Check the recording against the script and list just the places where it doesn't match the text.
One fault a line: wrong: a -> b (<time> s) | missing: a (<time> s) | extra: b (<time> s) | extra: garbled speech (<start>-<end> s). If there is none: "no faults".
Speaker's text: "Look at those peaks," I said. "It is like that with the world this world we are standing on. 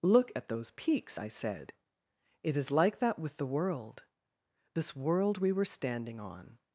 wrong: are -> were (5.5 s)